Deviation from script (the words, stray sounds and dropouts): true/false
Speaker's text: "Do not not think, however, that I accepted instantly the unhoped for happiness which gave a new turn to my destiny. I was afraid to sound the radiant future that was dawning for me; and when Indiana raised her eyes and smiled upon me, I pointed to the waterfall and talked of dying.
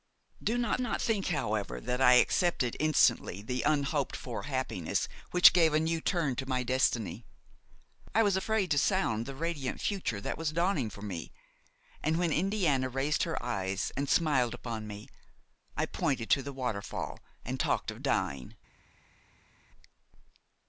false